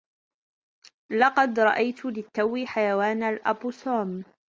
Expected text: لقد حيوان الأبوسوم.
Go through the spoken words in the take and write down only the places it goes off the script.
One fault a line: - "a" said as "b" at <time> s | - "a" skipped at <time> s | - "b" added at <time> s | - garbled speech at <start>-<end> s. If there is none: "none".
- "رأيت للتو" added at 1.6 s